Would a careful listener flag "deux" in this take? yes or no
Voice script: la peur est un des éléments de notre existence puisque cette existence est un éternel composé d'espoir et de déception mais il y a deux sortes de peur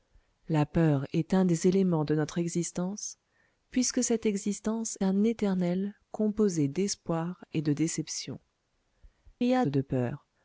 yes